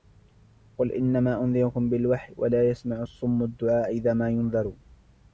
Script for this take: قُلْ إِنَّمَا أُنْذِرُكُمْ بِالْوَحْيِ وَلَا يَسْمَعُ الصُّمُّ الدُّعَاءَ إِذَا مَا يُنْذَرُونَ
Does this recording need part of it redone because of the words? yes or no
no